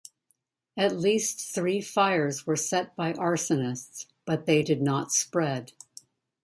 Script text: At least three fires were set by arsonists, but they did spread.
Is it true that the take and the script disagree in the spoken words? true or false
true